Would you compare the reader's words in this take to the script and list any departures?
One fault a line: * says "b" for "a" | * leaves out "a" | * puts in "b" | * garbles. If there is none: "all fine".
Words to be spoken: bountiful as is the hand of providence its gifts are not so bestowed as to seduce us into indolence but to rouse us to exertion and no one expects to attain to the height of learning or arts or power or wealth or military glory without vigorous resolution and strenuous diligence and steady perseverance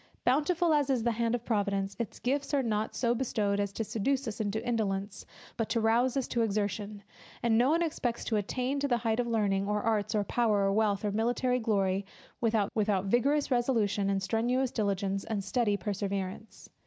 * puts in "without"